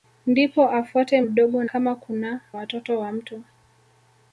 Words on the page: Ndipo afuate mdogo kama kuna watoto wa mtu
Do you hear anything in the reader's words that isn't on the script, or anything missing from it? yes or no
no